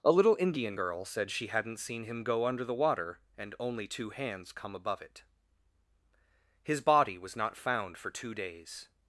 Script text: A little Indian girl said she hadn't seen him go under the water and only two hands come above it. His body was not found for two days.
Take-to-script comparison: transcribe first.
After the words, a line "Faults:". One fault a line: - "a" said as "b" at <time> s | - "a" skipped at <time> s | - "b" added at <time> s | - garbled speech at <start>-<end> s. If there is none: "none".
A little Indian girl said she hadn't seen him go under the water and only two hands come above it. His body was not found for two days.
Faults:
none